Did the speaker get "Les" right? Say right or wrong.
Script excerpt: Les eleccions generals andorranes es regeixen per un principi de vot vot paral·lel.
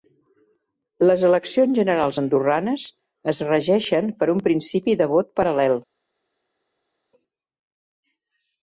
right